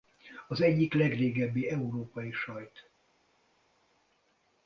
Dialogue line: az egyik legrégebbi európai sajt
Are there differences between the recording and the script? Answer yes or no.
no